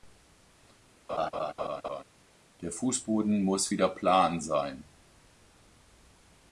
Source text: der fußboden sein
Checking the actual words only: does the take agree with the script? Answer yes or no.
no